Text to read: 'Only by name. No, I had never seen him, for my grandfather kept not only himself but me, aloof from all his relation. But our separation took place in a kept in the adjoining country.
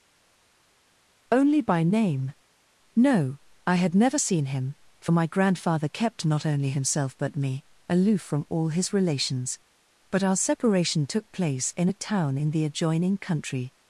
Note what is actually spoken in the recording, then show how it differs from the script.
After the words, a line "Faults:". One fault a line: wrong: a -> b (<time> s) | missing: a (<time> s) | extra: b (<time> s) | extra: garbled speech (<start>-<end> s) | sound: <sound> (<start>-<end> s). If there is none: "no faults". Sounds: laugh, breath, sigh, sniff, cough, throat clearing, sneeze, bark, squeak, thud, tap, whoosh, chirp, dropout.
'Only by name. No, I had never seen him, for my grandfather kept not only himself but me, aloof from all his relations. But our separation took place in a town in the adjoining country.
Faults:
wrong: relation -> relations (8.9 s)
wrong: kept -> town (11.9 s)